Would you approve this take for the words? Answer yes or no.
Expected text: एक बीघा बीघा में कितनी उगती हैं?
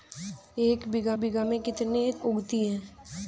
yes